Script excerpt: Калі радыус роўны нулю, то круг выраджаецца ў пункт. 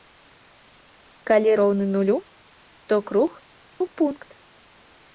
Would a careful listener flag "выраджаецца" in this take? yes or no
yes